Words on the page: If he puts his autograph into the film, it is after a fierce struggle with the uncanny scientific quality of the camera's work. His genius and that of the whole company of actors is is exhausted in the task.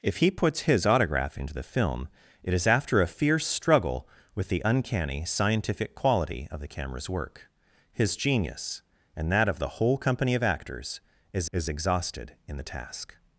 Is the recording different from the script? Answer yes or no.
no